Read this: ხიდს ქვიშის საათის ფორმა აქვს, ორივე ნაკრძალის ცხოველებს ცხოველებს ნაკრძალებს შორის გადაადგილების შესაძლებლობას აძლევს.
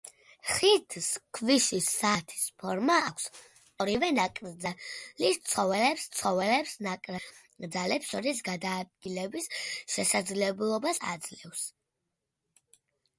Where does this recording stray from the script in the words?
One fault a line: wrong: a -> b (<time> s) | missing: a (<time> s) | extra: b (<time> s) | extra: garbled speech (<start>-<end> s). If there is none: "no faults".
no faults